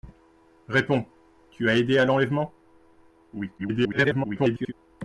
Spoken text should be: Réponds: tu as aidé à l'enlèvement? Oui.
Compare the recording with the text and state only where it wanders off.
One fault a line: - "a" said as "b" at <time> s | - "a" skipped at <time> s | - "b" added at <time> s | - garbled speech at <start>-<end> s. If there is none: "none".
- garbled speech at 3.6-4.7 s